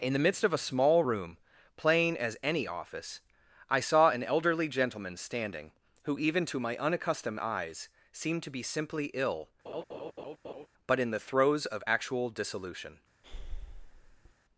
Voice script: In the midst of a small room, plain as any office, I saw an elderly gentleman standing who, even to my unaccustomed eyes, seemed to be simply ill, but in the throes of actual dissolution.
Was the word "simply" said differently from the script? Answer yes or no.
no